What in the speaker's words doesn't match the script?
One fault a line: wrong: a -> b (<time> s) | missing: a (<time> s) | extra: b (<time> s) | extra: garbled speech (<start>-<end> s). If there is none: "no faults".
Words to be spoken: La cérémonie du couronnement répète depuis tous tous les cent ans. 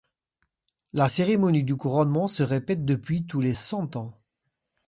extra: se (2.3 s)
missing: tous (3.4 s)